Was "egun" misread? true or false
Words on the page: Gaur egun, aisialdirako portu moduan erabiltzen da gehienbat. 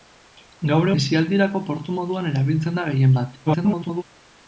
true